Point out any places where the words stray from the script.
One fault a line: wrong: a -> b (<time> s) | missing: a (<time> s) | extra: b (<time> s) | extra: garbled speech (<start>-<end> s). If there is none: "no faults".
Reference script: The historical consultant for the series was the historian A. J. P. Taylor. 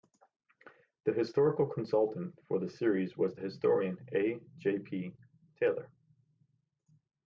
no faults